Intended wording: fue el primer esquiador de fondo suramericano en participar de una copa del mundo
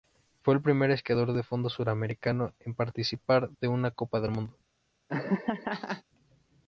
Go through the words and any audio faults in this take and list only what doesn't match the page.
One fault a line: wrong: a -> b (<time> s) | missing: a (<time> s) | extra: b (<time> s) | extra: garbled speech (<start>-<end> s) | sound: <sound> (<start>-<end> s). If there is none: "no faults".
sound: laugh (5.1-6.0 s)